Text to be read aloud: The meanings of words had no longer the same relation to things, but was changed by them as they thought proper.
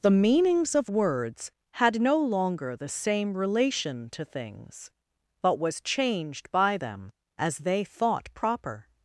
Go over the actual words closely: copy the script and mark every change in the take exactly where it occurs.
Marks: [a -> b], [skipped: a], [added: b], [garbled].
The meanings of words had no longer the same relation to things, but was changed by them as they thought proper.